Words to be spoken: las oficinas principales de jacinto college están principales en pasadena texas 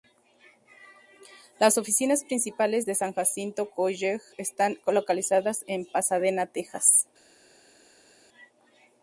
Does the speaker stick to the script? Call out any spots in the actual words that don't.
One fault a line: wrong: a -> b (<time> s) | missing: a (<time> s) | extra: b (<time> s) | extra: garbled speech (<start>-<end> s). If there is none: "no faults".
extra: san (2.9 s)
wrong: principales -> localizadas (4.9 s)